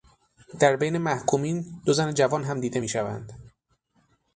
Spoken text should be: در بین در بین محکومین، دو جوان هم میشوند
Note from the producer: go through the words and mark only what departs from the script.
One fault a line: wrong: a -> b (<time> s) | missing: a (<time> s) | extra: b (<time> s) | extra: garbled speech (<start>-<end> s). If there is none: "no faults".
missing: در بین (1.0 s)
extra: زن (1.9 s)
extra: دیده (2.6 s)